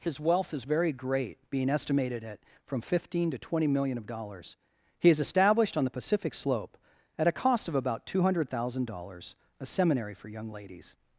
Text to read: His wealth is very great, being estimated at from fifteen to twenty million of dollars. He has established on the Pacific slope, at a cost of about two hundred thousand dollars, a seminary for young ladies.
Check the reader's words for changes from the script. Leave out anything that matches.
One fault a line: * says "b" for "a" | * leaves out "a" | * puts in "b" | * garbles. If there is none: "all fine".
all fine